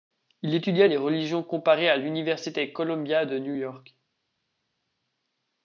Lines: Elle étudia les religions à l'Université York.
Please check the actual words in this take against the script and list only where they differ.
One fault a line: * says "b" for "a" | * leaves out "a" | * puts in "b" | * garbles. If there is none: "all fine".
* says "Il" for "Elle"
* puts in "comparées"
* puts in "Columbia de New"